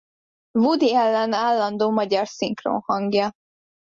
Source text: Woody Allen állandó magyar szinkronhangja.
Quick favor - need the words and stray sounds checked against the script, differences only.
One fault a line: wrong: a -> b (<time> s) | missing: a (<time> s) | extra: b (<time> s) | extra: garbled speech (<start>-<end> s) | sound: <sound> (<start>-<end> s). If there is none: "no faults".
no faults